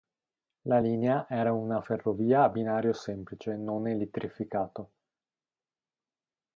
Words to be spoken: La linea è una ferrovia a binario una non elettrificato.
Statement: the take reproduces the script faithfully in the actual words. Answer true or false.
false